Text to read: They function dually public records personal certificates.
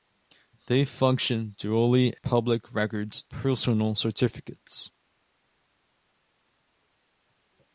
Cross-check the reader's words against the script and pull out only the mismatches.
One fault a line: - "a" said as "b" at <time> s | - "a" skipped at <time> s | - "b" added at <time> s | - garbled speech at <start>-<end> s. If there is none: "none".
none